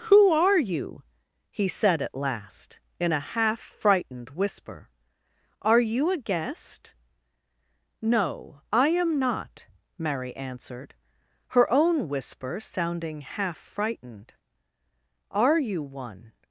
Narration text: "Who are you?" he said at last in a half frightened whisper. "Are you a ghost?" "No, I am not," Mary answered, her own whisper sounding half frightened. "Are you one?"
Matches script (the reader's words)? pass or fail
fail